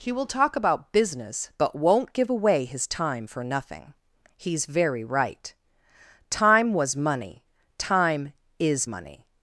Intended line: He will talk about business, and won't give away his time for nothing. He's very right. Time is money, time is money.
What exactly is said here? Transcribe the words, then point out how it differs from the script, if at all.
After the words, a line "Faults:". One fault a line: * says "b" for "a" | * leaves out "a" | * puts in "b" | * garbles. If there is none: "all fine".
He will talk about business, but won't give away his time for nothing. He's very right. Time was money, time is money.
Faults:
* says "but" for "and"
* says "was" for "is"